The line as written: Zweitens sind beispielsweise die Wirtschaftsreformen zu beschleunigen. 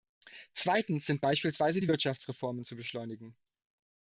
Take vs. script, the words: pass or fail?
pass